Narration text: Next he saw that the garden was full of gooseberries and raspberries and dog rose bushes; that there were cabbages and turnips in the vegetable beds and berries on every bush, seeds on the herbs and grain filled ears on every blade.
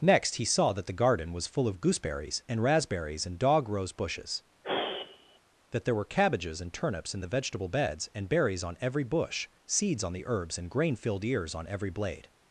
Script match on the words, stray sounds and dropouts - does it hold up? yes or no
no